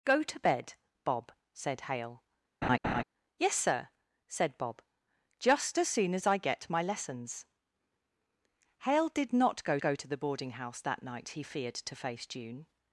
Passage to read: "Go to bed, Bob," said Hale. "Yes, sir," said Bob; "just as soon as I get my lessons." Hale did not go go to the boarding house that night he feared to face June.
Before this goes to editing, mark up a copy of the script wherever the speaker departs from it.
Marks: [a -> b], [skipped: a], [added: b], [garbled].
"Go to bed, Bob," said Hale. "Yes, sir," said Bob; "just as soon as I get my lessons." Hale did not go go to the boarding house that night he feared to face June.